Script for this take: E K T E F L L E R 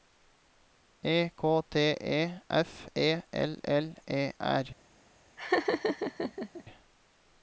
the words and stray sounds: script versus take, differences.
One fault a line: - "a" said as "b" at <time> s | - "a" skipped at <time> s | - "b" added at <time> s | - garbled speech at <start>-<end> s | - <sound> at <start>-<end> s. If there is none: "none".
- "E" added at 3.0 s
- laugh at 5.4-6.6 s